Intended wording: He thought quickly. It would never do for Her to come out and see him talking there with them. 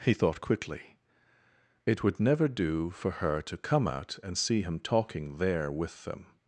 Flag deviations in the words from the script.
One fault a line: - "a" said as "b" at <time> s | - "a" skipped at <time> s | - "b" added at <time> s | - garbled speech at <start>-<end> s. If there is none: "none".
none